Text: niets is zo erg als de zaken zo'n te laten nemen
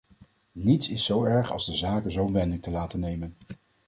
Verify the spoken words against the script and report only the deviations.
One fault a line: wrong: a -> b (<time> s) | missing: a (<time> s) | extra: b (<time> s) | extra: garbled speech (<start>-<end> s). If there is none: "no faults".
extra: wending (2.3 s)